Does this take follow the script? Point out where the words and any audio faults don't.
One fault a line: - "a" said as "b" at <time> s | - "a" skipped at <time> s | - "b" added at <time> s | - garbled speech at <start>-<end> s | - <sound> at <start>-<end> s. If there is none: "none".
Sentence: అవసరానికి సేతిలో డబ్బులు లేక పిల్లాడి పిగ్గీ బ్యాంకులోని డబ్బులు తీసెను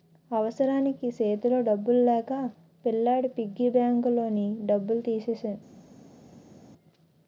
none